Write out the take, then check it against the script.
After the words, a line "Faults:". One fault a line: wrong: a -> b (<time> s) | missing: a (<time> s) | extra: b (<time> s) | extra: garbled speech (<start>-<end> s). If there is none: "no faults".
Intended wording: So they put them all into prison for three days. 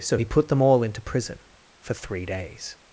So he put them all into prison for three days.
Faults:
wrong: they -> he (0.1 s)